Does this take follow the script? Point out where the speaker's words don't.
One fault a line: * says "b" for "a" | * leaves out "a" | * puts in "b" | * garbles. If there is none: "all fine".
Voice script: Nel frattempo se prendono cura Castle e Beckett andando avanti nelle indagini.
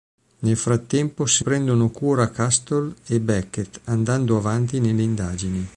all fine